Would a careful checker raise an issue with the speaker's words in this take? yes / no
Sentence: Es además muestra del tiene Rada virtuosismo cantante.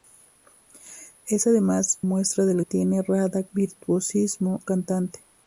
no